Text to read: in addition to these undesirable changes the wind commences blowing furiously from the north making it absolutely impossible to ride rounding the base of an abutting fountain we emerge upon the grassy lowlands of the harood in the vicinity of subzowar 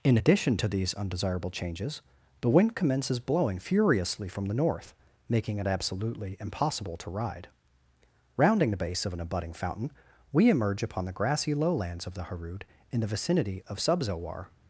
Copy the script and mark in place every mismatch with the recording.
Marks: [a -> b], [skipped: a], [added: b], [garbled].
in addition to these undesirable changes the wind commences blowing furiously from the north making it absolutely impossible to ride rounding the base of an abutting fountain we emerge upon the grassy lowlands of the harood in the vicinity of subzowar